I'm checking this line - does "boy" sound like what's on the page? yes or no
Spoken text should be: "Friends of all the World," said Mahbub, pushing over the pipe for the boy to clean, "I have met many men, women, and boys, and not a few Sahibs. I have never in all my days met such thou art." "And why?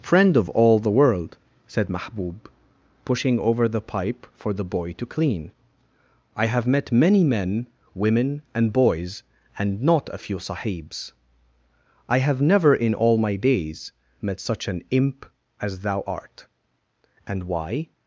yes